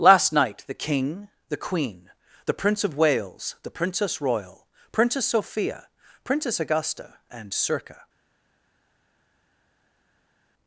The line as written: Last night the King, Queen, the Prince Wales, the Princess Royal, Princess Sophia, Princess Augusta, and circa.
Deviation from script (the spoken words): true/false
true